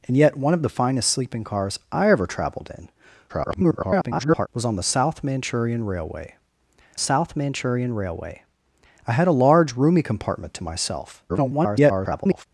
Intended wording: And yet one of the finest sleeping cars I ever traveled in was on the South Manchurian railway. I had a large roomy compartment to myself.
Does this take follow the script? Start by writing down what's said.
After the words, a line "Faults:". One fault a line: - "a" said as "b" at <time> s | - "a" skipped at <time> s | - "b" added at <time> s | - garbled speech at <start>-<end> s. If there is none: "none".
And yet one of the finest sleeping cars I ever traveled in [garbled] was on the South Manchurian railway South Manchurian railway. I had a large roomy compartment to myself. [garbled]
Faults:
- garbled speech at 3.3-4.5 s
- "South Manchurian railway" added at 7.0 s
- garbled speech at 11.3-12.5 s